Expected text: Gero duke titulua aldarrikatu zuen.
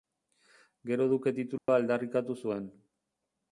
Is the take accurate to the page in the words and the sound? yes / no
no